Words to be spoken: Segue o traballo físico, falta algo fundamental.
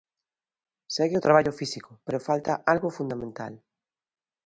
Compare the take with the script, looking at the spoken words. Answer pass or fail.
fail